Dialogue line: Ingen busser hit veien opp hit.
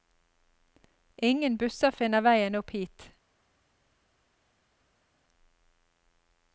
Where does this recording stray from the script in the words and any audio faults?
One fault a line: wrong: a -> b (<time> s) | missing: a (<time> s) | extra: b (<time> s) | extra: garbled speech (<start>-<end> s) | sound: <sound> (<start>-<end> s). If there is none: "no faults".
wrong: hit -> finner (2.0 s)